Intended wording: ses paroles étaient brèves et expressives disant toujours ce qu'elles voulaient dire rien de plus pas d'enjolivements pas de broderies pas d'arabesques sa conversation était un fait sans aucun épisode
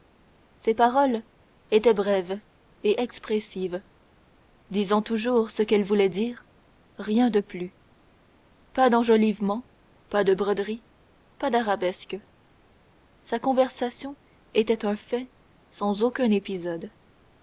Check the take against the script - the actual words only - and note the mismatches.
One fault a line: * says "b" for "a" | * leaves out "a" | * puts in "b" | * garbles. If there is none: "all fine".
all fine